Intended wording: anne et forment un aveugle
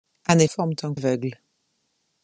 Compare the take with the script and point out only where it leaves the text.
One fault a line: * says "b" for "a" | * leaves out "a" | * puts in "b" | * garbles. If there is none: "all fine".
all fine